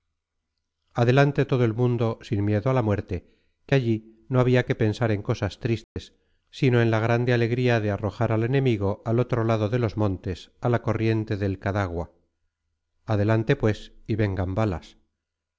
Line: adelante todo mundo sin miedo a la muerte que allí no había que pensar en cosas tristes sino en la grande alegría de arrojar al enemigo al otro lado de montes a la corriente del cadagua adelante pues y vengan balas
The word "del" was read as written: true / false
true